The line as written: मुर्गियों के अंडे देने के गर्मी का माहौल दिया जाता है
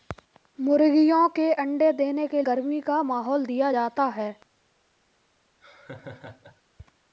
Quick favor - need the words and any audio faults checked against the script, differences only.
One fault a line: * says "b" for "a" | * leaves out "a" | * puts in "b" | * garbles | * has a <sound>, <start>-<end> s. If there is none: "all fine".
* has a laugh, 5.6-6.6 s